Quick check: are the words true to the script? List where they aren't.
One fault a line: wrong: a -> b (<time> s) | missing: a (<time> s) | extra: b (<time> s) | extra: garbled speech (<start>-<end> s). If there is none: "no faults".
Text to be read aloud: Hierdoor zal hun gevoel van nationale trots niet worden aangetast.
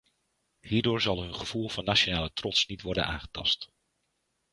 no faults